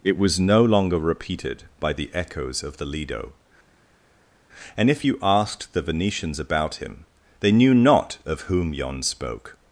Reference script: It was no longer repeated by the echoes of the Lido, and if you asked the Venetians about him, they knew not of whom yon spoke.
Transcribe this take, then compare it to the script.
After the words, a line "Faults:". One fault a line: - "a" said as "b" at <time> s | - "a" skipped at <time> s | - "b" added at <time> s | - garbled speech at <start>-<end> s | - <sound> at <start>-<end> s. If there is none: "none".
It was no longer repeated by the echoes of the Lido, and if you asked the Venetians about him, they knew not of whom yon spoke.
Faults:
none